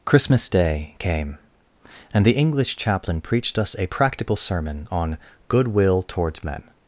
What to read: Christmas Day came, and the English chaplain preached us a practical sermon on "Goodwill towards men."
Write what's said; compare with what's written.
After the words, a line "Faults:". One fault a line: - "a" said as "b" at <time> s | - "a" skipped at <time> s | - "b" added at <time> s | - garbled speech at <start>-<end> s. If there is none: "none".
Christmas Day came, and the English chaplain preached us a practical sermon on "Goodwill towards men."
Faults:
none